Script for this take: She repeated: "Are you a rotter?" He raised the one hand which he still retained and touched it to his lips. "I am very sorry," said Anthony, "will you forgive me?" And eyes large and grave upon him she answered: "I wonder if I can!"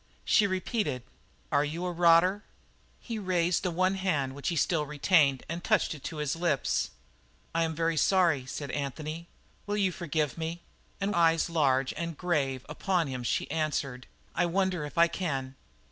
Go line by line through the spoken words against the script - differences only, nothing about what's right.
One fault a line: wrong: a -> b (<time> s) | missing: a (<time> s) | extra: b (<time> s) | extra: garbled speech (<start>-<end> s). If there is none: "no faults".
no faults